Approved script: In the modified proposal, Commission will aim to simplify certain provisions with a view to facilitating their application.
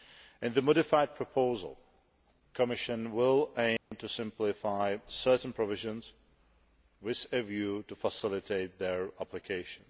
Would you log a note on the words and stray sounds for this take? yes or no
yes